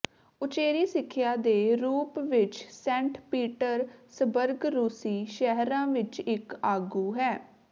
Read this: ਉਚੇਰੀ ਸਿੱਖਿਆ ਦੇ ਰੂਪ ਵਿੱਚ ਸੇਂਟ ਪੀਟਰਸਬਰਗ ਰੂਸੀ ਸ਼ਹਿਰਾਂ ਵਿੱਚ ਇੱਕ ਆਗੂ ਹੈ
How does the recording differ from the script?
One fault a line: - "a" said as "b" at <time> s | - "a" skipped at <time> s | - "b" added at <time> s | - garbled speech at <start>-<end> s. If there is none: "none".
none